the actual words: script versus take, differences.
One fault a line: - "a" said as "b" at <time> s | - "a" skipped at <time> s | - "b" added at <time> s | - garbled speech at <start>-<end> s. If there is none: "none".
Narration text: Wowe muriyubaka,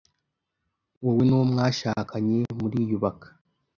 - "n'uwo mwashakanye" added at 1.2 s